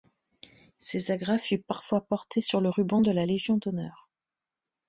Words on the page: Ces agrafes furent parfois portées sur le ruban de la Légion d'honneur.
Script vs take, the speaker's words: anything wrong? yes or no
no